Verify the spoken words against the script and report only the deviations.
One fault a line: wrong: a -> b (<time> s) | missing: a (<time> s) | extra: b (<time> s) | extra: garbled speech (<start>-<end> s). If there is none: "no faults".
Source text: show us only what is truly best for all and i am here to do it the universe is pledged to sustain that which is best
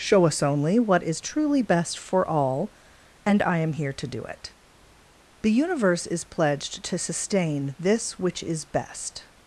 wrong: that -> this (7.8 s)